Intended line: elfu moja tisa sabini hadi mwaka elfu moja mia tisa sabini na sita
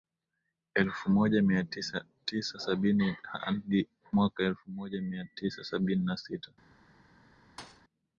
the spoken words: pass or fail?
pass